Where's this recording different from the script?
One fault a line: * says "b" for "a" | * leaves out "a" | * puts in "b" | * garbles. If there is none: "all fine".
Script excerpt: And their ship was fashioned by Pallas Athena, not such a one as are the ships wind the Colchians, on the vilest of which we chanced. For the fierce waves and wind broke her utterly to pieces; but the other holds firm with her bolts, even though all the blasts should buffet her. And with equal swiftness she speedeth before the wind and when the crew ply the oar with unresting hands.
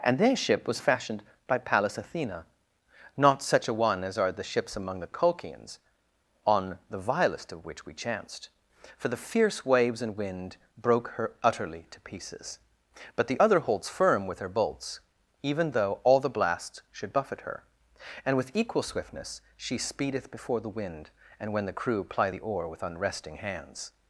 * says "among" for "wind"